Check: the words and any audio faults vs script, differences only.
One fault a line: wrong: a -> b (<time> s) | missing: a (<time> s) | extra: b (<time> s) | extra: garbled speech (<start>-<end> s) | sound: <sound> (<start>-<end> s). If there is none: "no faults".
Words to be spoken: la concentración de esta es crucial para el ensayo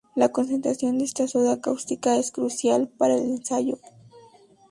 extra: soda cáustica (1.3 s)